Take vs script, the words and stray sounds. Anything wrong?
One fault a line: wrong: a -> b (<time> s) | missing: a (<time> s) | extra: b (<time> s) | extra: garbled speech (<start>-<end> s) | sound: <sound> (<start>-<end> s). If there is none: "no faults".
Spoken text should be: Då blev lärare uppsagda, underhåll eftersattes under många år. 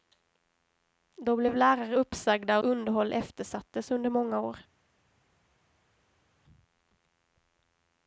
no faults